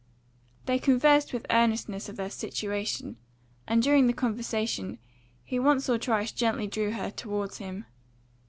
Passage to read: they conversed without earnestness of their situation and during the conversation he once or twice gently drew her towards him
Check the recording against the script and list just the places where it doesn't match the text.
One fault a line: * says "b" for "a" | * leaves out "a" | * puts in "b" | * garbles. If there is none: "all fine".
* says "with" for "without"